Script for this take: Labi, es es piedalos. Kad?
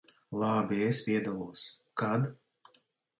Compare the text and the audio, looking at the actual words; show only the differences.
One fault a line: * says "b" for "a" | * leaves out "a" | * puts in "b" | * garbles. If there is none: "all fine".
* leaves out "es"